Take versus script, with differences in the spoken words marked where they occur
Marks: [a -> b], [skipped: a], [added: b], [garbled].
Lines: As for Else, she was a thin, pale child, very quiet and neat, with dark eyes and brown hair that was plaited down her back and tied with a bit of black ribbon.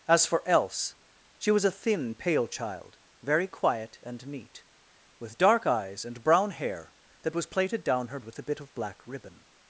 As for Else, she was a thin, pale child, very quiet and neat, with dark eyes and brown hair that was plaited down her [skipped: back and tied] with a bit of black ribbon.